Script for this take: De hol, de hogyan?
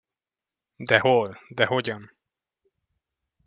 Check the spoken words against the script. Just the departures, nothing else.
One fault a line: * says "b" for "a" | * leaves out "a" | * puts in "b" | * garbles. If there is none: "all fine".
all fine